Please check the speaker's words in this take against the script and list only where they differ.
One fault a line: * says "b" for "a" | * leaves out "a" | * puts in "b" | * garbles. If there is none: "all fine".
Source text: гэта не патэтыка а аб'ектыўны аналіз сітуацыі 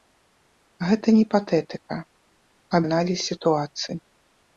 * leaves out "аб'ектыўны"